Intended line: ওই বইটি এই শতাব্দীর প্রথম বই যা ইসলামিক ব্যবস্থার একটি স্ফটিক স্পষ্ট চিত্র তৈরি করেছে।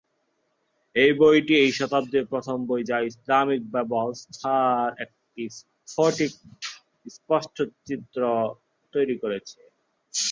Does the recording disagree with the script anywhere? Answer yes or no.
yes